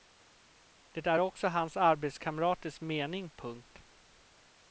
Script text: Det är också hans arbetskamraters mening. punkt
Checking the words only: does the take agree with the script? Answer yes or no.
yes